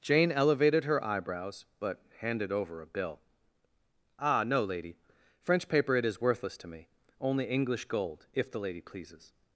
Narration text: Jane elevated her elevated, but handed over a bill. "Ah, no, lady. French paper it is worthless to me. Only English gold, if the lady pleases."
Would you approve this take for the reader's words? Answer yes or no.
no